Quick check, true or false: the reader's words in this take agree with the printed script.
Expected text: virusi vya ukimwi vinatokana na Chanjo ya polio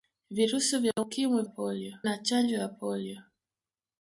false